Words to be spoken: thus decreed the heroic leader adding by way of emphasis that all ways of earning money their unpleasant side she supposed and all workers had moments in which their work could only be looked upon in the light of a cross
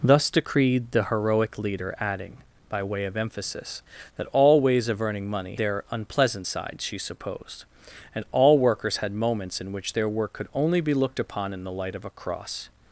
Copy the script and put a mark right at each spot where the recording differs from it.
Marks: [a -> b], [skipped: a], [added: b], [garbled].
thus decreed the heroic leader adding by way of emphasis that all ways of earning money their unpleasant side she supposed and all workers had moments in which their work could only be looked upon in the light of a cross